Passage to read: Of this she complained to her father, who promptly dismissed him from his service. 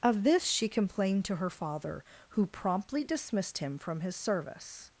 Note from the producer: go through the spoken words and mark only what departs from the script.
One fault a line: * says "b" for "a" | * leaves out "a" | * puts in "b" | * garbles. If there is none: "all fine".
all fine